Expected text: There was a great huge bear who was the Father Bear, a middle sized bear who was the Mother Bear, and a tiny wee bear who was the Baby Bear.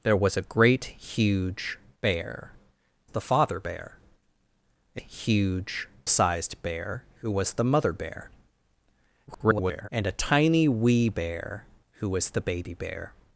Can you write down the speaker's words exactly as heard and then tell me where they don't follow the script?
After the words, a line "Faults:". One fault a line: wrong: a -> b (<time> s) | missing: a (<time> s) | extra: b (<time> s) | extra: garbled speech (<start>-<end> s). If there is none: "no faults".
There was a great huge bear the Father Bear, a huge sized bear who was the Mother Bear, [garbled] and a tiny wee bear who was the Baby Bear.
Faults:
missing: who was (2.5 s)
wrong: middle -> huge (4.9 s)
extra: garbled speech (9.3-9.9 s)